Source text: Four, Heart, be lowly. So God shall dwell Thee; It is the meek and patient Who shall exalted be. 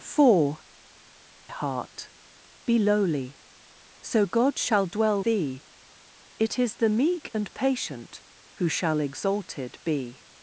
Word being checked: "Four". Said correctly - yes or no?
yes